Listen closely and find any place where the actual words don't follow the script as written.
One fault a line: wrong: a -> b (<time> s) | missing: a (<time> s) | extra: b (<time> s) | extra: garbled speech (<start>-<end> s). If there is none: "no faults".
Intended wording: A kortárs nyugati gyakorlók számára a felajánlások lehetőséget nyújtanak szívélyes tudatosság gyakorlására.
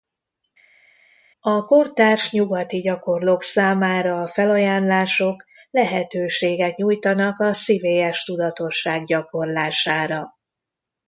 extra: a (7.4 s)